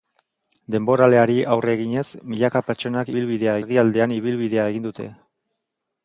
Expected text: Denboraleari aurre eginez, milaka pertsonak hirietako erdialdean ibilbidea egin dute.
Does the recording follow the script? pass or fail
fail